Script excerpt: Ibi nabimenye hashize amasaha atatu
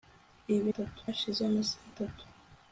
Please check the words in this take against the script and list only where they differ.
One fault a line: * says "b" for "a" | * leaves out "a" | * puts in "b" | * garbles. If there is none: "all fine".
* says "atatu" for "nabimenye"